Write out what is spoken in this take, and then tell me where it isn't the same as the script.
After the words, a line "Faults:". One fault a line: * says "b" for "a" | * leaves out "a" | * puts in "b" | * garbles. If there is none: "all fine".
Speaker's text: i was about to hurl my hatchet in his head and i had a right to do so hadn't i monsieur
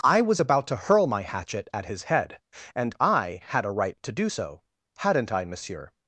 i was about to hurl my hatchet at his head and i had a right to do so hadn't i monsieur
Faults:
* says "at" for "in"